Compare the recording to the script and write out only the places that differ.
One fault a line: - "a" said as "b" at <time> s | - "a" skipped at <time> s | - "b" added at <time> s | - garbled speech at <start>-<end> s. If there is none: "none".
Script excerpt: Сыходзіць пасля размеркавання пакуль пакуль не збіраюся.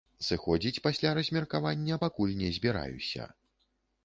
- "пакуль" skipped at 2.4 s